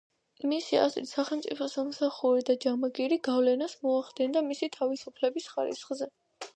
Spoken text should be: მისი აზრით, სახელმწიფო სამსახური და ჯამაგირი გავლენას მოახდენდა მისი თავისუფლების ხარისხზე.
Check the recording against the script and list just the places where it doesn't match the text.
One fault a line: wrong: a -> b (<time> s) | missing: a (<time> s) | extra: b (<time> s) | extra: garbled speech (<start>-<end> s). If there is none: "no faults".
no faults